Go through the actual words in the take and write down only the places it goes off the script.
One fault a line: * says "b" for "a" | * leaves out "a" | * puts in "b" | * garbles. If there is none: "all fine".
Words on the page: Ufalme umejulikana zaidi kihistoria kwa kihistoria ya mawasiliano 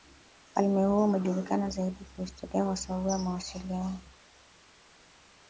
* puts in "huo"
* says "sababu" for "kihistoria"